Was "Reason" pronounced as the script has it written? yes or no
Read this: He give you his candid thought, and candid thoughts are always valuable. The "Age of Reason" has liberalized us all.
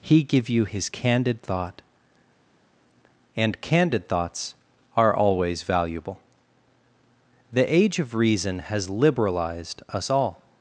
yes